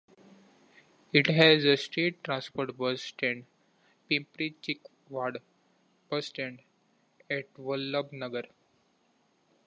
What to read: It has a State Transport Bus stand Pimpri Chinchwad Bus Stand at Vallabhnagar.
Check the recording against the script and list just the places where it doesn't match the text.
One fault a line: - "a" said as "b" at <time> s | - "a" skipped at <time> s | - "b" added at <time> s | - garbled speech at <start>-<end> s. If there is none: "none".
none